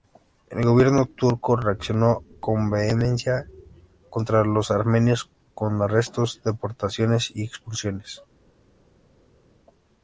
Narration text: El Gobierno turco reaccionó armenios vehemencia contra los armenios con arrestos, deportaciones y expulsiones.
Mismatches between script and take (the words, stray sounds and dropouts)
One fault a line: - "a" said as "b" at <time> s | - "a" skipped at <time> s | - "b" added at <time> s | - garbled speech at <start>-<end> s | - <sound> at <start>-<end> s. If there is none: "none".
- "armenios" said as "con" at 2.4 s